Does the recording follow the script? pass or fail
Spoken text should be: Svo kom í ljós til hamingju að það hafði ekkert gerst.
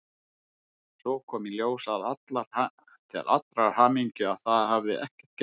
fail